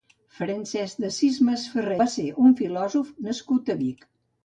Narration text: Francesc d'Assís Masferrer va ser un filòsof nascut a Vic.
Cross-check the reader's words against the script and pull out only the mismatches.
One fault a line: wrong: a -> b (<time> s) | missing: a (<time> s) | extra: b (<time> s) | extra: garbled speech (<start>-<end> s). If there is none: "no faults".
no faults